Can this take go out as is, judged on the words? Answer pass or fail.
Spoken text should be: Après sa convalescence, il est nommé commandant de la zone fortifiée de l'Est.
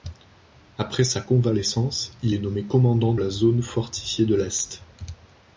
fail